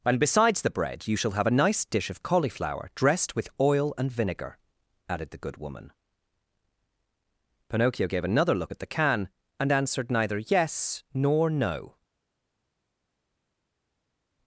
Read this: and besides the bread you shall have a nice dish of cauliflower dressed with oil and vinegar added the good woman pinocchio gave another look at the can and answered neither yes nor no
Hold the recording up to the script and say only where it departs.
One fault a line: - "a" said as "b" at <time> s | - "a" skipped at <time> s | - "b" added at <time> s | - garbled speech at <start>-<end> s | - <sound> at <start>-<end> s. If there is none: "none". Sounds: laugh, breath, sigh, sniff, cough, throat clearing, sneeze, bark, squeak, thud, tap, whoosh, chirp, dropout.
none